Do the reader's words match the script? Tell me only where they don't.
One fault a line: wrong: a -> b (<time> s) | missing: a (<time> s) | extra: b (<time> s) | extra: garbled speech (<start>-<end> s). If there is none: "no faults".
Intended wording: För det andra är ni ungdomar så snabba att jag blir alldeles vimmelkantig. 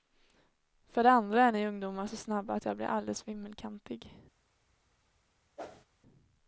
no faults